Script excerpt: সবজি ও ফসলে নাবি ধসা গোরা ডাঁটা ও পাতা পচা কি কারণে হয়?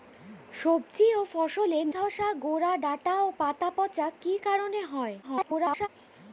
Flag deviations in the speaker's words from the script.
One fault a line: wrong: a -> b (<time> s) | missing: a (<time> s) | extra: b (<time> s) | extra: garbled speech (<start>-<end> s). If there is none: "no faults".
missing: নাবি (1.8 s)
extra: garbled speech (5.2-5.9 s)